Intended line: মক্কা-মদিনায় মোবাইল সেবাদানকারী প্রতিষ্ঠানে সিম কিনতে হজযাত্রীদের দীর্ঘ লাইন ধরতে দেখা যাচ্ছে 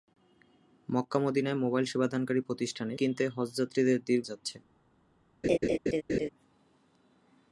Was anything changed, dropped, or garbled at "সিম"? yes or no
yes